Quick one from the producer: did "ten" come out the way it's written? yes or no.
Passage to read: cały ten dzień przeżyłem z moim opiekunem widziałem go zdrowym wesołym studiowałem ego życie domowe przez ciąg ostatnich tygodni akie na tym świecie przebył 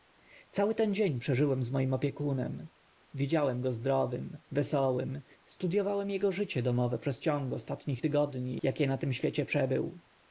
yes